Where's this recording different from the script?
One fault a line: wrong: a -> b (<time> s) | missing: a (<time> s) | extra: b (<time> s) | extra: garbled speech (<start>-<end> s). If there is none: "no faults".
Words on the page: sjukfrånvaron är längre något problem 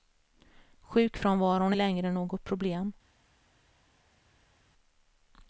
no faults